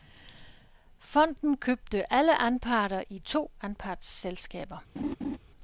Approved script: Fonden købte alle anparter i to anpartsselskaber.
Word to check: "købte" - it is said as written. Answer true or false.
true